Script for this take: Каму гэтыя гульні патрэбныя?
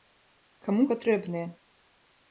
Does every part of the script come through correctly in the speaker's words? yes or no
no